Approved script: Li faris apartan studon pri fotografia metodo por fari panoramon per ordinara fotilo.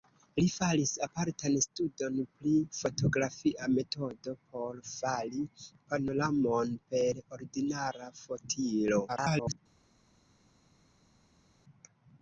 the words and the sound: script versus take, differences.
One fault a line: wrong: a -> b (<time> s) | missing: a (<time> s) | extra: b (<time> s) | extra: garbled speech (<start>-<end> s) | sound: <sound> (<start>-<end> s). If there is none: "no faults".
extra: garbled speech (9.1-9.6 s)